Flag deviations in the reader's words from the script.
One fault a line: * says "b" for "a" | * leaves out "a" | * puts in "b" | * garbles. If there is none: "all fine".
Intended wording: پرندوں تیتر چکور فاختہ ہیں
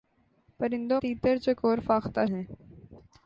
all fine